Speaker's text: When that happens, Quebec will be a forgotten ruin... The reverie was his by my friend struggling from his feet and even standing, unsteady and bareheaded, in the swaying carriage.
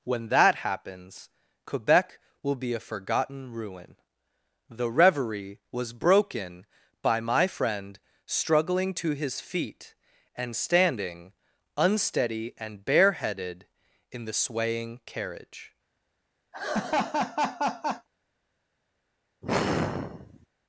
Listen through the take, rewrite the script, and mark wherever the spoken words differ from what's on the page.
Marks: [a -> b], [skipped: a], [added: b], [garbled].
When that happens, Quebec will be a forgotten ruin... The reverie was [his -> broken] by my friend struggling [from -> to] his feet and [skipped: even] standing, unsteady and bareheaded, in the swaying carriage.